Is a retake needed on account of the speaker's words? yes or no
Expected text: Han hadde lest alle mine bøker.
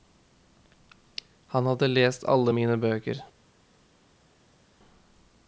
no